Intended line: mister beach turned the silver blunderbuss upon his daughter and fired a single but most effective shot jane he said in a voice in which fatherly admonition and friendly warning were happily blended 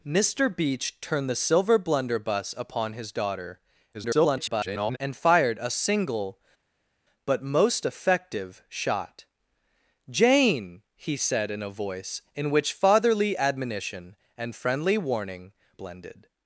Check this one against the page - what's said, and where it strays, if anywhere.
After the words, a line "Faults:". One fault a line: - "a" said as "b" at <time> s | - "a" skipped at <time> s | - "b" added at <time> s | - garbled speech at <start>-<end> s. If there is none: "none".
mister beach turned the silver blunderbuss upon his daughter [garbled] and fired a single but most effective shot jane he said in a voice in which fatherly admonition and friendly warning blended
Faults:
- garbled speech at 3.9-5.0 s
- "were happily" skipped at 15.5 s